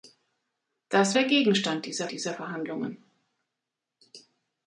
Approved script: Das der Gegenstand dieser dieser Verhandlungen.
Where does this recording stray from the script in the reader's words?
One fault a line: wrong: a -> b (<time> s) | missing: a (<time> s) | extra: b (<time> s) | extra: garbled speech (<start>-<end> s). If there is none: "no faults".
no faults